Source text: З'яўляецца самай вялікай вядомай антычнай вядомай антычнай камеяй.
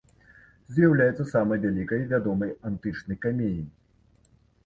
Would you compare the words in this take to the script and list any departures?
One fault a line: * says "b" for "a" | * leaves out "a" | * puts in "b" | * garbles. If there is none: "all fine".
* leaves out "вядомай антычнай"